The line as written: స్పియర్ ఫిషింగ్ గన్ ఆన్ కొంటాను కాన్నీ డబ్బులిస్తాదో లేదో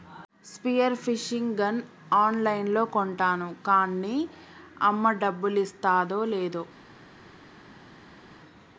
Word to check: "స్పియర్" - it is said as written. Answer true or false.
true